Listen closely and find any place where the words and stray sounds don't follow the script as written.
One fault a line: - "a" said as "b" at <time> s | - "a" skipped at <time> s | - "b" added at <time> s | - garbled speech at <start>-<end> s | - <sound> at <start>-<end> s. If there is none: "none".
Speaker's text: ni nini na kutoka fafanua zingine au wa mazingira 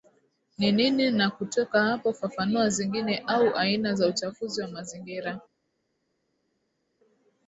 - "hapo" added at 1.8 s
- "aina za uchafuzi" added at 3.5 s